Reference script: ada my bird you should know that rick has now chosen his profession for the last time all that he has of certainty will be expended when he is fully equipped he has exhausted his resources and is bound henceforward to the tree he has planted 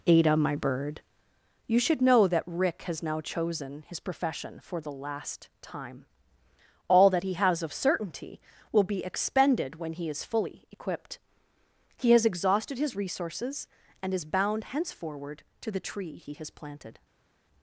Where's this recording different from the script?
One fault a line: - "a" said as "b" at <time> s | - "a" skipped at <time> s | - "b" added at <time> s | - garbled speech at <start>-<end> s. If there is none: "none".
none